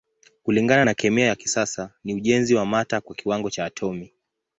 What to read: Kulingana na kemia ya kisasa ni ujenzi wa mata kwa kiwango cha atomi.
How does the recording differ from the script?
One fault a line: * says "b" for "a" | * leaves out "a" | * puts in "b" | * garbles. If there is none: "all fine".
all fine